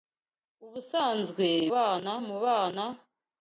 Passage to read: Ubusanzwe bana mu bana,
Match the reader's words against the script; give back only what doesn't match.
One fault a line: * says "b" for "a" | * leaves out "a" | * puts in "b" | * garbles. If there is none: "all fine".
all fine